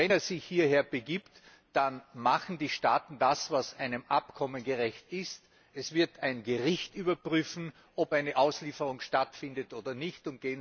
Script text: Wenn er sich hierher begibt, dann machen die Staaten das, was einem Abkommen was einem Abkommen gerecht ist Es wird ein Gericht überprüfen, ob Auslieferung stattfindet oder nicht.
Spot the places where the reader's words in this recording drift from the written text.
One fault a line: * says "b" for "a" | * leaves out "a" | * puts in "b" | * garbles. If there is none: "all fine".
* leaves out "was einem Abkommen"
* puts in "eine"